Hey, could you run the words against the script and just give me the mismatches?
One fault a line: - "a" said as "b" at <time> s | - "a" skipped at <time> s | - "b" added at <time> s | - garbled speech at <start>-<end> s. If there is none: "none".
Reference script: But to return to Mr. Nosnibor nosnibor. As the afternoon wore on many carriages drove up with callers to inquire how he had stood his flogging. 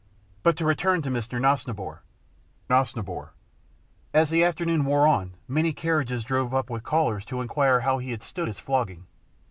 none